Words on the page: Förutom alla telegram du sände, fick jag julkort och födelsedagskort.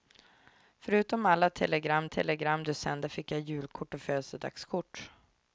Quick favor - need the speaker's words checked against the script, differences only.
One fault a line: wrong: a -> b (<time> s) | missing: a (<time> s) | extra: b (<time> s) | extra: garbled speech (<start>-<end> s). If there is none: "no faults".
extra: telegram (2.1 s)